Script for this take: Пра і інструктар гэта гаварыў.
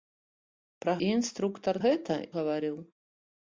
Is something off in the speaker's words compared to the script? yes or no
no